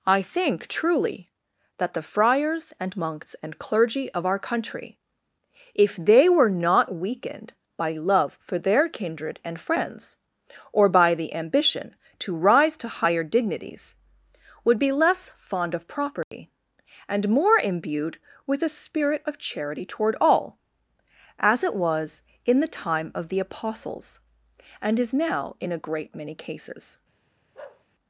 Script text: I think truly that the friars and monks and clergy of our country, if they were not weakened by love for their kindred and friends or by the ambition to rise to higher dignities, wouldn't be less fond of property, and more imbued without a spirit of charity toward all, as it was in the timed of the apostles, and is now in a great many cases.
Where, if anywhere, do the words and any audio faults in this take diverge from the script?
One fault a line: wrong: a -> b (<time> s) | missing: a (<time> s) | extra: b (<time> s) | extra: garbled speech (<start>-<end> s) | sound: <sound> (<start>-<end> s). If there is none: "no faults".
wrong: wouldn't -> would (14.6 s)
sound: dropout (16.2-16.3 s)
wrong: without -> with (18.4 s)
wrong: timed -> time (22.7 s)
sound: bark (27.5-27.8 s)